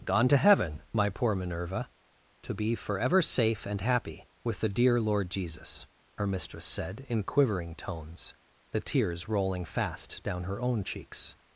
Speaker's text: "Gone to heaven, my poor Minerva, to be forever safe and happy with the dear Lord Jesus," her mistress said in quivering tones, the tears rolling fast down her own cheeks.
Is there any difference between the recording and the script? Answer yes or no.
no